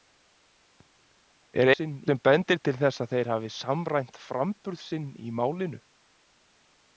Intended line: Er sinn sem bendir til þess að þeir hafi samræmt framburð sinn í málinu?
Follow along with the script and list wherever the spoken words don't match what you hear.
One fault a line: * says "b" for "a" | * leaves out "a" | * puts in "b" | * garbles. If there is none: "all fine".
all fine